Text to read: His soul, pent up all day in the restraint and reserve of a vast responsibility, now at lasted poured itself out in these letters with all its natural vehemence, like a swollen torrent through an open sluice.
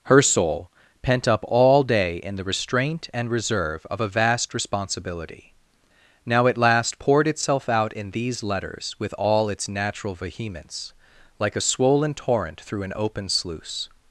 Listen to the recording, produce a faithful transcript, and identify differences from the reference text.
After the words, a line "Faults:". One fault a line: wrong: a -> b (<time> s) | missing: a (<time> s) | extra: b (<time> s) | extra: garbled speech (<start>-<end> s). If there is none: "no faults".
Her soul, pent up all day in the restraint and reserve of a vast responsibility, now at last poured itself out in these letters with all its natural vehemence, like a swollen torrent through an open sluice.
Faults:
wrong: His -> Her (0.0 s)
wrong: lasted -> last (6.6 s)